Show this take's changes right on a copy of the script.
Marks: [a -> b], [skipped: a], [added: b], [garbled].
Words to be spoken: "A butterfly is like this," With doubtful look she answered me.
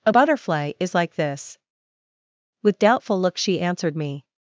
"A butterfly is like this," With doubtful look she answered me.